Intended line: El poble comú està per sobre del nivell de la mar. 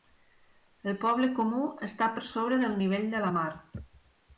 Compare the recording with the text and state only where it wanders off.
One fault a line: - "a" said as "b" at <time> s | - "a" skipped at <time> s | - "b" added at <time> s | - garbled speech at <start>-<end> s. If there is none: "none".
none